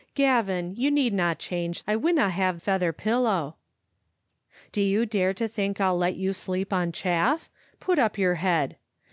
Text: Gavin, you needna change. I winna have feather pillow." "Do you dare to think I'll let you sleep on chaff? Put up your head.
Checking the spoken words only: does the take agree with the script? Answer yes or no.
yes